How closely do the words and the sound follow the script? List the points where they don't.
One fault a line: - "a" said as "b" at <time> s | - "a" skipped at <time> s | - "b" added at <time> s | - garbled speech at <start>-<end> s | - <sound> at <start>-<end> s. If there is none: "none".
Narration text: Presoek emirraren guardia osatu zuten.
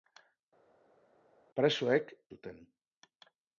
- "emirraren guardia osatu" skipped at 2.1 s